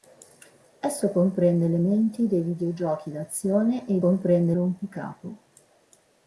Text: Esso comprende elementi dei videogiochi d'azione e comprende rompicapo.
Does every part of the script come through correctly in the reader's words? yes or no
yes